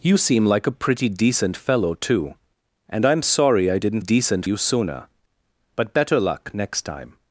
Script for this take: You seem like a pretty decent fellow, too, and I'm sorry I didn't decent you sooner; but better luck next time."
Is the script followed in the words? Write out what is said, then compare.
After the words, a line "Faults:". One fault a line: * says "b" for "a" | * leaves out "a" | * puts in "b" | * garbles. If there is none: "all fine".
You seem like a pretty decent fellow, too, and I'm sorry I didn't decent you sooner; but better luck next time."
Faults:
all fine